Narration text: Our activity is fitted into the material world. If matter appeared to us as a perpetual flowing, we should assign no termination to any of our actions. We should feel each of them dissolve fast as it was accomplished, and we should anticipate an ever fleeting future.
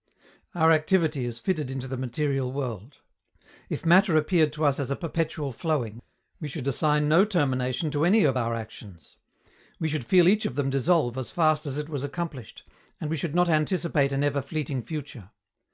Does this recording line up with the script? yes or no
no